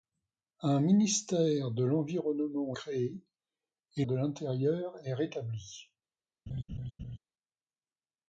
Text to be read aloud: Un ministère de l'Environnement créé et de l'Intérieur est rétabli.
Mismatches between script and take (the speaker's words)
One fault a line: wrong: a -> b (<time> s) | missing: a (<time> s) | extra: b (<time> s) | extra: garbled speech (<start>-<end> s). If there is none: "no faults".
no faults